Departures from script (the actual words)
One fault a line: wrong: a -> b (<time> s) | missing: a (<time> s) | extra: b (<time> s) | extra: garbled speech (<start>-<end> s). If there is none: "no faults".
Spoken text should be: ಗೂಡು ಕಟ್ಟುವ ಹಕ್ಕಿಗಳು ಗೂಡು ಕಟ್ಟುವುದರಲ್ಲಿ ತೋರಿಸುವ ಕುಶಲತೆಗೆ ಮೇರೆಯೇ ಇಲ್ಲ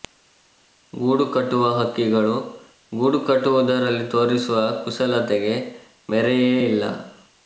no faults